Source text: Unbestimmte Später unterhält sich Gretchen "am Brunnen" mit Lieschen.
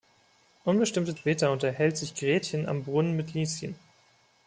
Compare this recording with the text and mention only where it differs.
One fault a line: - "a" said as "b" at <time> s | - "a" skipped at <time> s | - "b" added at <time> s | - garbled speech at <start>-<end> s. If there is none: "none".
none